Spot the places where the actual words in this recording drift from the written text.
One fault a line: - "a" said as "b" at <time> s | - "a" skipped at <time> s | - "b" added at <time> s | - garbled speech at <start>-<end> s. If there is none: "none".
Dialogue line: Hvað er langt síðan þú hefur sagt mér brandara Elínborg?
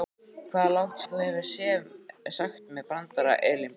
- "síðan" skipped at 1.0 s